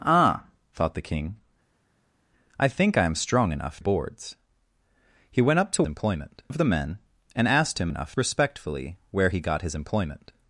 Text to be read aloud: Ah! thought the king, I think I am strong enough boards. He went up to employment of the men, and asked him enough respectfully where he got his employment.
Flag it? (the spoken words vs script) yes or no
no